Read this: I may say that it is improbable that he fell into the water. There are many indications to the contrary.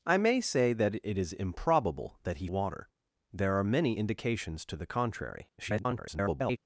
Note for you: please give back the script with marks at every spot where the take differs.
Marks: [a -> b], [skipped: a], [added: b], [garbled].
I may say that it is improbable that he [skipped: fell into the] water. There are many indications to the contrary. [garbled]